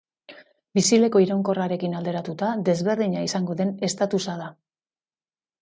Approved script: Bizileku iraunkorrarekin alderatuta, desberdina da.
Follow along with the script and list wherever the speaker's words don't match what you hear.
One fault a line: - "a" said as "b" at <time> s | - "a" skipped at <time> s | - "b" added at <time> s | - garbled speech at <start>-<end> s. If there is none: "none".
- "izango den estatusa" added at 3.3 s